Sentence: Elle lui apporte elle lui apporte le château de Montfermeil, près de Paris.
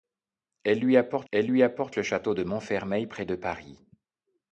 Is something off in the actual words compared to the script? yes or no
no